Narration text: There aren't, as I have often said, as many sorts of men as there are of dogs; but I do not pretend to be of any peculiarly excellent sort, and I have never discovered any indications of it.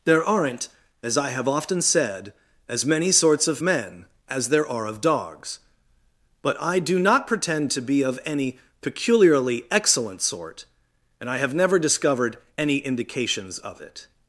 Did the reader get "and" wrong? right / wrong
right